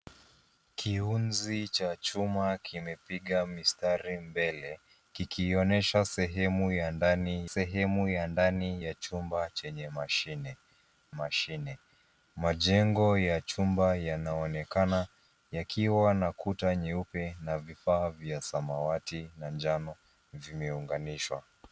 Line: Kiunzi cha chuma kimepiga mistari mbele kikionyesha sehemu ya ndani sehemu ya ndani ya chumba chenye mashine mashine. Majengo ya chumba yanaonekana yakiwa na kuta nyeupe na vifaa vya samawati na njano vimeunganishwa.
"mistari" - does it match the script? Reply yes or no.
yes